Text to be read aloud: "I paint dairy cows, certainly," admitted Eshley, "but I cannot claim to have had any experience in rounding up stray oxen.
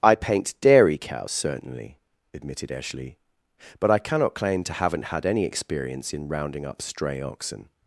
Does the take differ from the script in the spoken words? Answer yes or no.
yes